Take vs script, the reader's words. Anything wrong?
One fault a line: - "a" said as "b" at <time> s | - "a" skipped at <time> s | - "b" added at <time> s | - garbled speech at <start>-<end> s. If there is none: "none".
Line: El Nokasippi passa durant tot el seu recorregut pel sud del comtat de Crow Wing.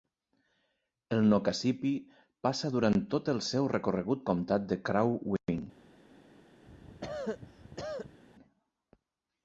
- "pel sud del" skipped at 4.3 s